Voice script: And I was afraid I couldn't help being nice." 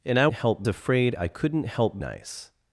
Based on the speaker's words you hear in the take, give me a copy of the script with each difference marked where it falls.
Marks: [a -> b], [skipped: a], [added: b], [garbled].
And I [was -> help] afraid I couldn't help [skipped: being] nice."